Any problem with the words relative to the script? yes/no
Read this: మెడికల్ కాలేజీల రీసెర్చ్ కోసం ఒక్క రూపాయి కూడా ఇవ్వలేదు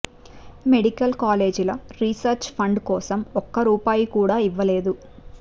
yes